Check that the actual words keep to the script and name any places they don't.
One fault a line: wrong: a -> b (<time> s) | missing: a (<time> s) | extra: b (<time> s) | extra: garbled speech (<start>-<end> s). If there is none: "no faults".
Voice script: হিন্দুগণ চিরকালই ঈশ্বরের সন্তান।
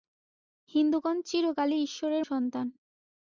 no faults